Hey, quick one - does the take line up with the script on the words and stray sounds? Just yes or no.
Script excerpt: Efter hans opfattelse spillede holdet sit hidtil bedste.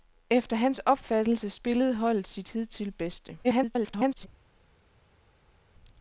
no